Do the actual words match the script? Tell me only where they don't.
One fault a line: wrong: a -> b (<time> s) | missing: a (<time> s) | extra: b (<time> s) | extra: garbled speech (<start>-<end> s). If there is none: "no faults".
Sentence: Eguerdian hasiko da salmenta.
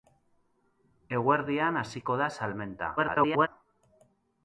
extra: garbled speech (3.0-3.5 s)